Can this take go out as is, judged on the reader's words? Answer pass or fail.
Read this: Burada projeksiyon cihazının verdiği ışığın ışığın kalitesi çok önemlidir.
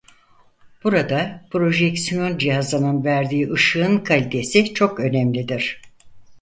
fail